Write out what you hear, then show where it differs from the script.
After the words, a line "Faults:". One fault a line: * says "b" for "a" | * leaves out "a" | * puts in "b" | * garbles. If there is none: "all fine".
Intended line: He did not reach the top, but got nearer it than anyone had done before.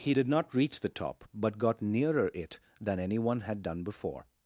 He did not reach the top, but got nearer it than anyone had done before.
Faults:
all fine